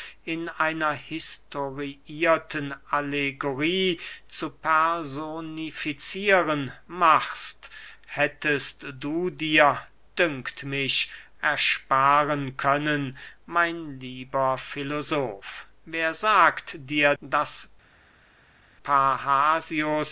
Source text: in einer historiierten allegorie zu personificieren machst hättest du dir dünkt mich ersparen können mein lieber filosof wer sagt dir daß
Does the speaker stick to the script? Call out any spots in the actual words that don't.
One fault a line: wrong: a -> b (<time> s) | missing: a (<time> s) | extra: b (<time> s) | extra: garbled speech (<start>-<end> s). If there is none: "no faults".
no faults